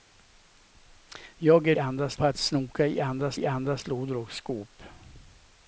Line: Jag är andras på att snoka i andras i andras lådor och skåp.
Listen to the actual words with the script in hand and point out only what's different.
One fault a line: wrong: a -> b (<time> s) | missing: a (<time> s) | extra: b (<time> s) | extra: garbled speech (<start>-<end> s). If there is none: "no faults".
no faults